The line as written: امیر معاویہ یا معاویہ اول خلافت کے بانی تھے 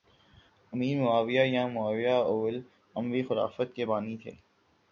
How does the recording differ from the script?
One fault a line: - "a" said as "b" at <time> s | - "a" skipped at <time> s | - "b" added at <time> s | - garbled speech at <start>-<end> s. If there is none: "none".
- "اموی" added at 3.0 s